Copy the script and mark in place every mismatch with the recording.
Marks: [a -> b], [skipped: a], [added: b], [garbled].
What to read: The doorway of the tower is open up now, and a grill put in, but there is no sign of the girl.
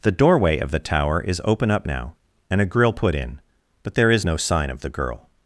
The doorway of the tower is open up now, and a grill put in, but there is no sign of the girl.